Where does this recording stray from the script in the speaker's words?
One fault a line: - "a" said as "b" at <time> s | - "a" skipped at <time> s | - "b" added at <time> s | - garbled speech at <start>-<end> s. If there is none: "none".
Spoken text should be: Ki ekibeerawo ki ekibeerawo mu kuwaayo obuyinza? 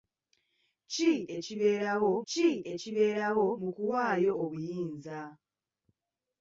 none